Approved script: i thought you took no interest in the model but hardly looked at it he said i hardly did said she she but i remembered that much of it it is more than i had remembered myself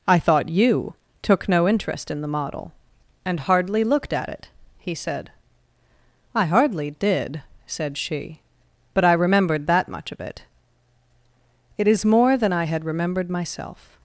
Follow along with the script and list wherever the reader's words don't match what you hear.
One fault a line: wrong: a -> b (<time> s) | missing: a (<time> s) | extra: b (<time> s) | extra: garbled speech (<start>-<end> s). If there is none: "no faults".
wrong: but -> and (3.3 s)
missing: she (8.4 s)